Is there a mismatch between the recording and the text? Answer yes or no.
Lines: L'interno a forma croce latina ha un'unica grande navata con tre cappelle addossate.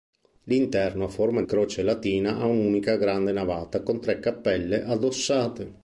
no